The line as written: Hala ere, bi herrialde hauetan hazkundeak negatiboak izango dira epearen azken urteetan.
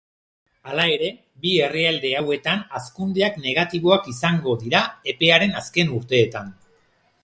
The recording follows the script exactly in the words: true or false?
true